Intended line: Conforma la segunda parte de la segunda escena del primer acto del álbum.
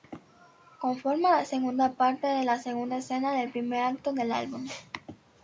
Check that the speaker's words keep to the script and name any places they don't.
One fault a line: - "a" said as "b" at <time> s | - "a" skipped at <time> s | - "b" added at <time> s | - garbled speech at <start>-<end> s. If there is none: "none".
none